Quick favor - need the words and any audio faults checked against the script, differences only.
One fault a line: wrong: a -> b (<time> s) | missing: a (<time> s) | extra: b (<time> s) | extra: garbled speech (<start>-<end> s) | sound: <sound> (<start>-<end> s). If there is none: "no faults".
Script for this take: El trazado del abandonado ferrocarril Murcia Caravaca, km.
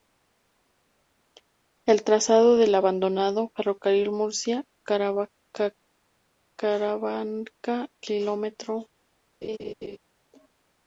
sound: laugh (9.4-10.0 s)